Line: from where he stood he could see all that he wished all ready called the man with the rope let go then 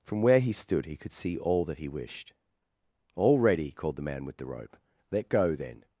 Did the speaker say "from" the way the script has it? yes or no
yes